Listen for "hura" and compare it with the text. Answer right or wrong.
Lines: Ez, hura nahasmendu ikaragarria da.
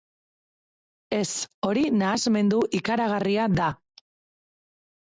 wrong